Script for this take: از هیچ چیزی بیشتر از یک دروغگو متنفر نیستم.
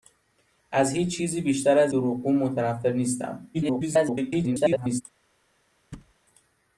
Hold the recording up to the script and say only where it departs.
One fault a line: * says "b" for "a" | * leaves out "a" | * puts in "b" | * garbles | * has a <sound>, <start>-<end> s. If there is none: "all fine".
* leaves out "یک"
* garbles
* has a thud, 5.9-6.1 s